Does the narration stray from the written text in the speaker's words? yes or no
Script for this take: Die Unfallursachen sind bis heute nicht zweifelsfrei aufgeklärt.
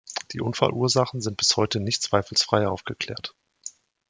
no